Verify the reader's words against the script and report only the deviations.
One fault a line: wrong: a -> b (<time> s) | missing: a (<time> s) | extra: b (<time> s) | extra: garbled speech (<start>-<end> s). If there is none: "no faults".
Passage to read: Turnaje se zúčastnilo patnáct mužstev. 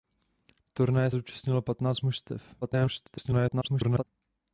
missing: se (1.1 s)
extra: garbled speech (2.6-4.0 s)